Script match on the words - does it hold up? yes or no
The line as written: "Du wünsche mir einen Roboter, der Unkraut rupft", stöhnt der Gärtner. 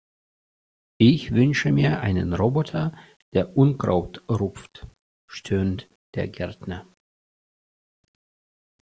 no